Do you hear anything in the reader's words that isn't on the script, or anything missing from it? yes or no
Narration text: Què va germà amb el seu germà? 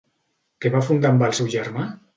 yes